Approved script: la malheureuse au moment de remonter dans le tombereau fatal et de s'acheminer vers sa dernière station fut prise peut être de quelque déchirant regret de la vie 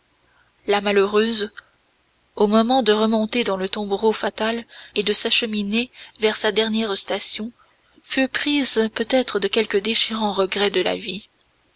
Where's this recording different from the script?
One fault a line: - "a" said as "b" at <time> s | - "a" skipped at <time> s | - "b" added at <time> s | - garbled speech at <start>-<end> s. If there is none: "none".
none